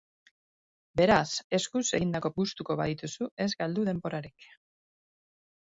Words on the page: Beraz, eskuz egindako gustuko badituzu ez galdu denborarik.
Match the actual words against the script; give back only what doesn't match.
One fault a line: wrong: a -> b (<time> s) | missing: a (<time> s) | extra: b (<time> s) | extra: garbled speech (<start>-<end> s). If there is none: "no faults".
no faults